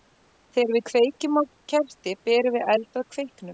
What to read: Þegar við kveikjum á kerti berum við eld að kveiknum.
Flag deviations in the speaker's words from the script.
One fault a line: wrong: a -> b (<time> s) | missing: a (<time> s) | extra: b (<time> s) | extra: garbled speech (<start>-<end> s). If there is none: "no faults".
no faults